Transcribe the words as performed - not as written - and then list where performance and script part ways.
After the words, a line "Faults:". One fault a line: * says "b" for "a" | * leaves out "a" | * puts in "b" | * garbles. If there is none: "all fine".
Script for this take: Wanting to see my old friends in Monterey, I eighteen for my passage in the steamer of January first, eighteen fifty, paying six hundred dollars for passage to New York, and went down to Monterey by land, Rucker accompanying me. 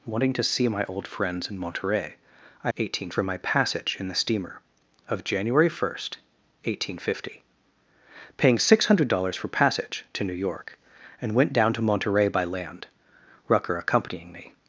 Wanting to see my old friends in Monterey, I eighteen for my passage in the steamer of January first, eighteen fifty, paying six hundred dollars for passage to New York, and went down to Monterey by land, Rucker accompanying me.
Faults:
all fine